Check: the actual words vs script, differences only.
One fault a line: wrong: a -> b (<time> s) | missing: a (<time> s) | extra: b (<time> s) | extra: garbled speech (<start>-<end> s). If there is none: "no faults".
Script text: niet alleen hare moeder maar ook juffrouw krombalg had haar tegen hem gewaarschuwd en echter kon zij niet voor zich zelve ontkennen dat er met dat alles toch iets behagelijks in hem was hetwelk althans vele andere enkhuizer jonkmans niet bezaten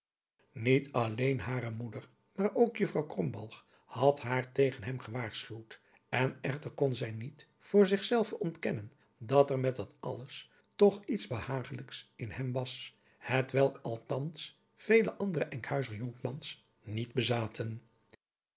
no faults